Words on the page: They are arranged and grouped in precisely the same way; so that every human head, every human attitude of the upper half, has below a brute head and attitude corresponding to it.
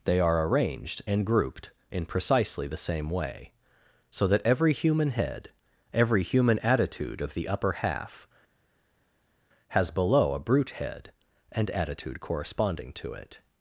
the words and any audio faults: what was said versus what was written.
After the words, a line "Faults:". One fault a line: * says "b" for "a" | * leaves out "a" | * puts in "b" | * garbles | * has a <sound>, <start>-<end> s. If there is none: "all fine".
They are arranged and grouped in precisely the same way; so that every human head, every human attitude of the upper half, has below a brute head and attitude corresponding to it.
Faults:
all fine